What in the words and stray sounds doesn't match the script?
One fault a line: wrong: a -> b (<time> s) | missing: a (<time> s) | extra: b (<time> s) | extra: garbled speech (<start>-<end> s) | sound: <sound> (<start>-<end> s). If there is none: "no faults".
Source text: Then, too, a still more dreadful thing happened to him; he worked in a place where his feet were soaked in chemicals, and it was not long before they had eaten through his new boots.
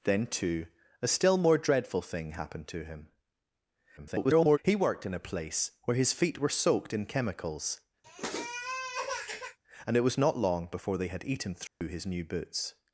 extra: garbled speech (4.0-4.6 s)
sound: sniff (8.0-9.6 s)
sound: dropout (11.7-11.8 s)